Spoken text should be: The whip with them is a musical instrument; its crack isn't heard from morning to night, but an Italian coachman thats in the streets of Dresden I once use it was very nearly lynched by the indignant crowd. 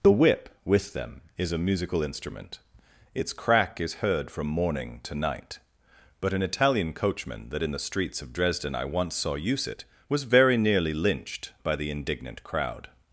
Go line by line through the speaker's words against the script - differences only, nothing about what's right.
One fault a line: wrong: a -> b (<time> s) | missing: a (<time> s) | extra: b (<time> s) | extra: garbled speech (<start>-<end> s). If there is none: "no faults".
wrong: isn't -> is (3.8 s)
wrong: thats -> that (7.5 s)
extra: saw (9.2 s)